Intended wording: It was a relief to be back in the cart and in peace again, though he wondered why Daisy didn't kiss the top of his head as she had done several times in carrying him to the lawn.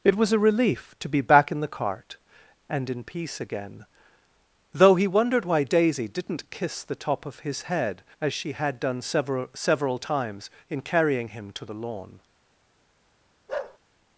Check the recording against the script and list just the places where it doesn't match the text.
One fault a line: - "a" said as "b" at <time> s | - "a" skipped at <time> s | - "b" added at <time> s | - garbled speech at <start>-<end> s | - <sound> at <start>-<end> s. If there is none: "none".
- "several" added at 9.5 s
- bark at 13.5-13.8 s